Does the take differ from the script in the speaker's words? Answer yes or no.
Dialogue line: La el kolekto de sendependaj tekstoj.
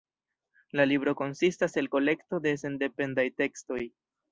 yes